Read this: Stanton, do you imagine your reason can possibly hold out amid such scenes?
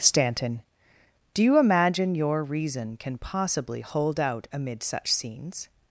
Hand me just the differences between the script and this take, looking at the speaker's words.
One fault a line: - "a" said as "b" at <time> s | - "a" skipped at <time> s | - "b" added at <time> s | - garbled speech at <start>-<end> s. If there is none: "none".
none